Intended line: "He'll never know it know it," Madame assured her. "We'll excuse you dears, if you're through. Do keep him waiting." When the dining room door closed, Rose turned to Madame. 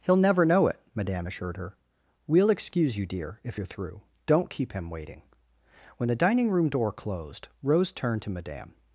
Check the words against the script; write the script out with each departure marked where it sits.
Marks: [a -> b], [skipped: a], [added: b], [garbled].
"He'll never know it [skipped: know it,"] Madame assured her. "We'll excuse you [dears, -> dear] if you're through. [Do -> Don't] keep him waiting." When the dining room door closed, Rose turned to Madame.